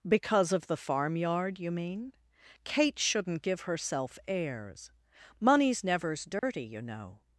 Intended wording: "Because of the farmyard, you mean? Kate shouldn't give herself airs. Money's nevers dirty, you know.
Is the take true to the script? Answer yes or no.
yes